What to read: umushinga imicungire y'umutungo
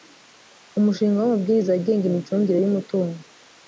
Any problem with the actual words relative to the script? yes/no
yes